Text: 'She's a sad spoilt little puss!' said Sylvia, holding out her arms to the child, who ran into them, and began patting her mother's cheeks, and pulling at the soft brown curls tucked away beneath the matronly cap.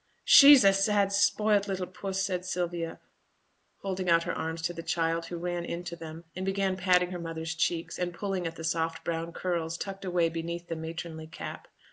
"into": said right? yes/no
yes